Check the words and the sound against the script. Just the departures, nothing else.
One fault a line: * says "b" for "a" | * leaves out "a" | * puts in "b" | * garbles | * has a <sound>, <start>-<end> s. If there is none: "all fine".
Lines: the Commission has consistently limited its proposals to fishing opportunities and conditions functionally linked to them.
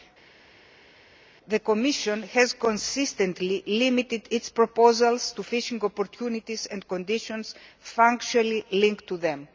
all fine